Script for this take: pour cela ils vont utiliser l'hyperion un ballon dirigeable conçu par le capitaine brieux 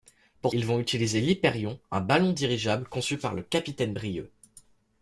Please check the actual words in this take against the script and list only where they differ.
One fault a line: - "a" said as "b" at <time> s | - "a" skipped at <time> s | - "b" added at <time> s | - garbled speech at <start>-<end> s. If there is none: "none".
- "cela" skipped at 0.6 s